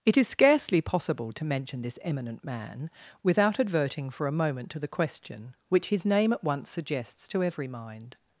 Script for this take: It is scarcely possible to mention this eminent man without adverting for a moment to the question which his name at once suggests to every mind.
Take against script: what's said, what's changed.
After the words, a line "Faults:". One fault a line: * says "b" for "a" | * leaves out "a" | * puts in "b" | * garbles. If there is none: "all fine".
It is scarcely possible to mention this eminent man without adverting for a moment to the question which his name at once suggests to every mind.
Faults:
all fine